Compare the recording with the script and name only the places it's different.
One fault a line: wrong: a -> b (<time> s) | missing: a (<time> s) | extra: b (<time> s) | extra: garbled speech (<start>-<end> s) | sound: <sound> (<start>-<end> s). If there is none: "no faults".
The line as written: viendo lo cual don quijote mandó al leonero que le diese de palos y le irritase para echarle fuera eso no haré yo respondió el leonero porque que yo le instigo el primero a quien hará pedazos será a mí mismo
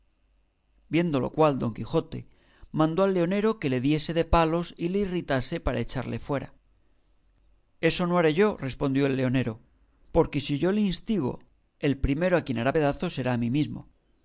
wrong: que -> si (10.4 s)